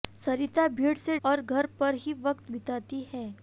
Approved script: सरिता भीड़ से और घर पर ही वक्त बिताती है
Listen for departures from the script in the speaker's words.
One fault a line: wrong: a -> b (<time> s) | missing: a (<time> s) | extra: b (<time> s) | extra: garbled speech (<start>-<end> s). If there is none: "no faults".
no faults